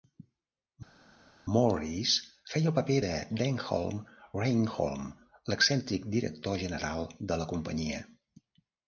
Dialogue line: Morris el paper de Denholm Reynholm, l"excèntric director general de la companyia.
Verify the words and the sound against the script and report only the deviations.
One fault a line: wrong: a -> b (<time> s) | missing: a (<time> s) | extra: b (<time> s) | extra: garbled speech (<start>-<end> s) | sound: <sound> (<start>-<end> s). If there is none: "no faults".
extra: feia (2.5 s)